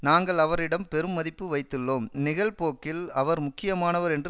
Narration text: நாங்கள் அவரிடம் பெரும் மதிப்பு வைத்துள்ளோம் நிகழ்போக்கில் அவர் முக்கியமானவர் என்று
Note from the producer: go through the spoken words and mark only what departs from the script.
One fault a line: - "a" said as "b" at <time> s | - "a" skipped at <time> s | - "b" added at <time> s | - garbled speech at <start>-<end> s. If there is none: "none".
none